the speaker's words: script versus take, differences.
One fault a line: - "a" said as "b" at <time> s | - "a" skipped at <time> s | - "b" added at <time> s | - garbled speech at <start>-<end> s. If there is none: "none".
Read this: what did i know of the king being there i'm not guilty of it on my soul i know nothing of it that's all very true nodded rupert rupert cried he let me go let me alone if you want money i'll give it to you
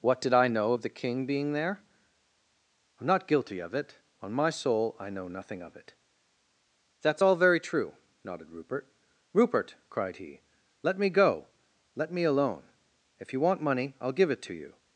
none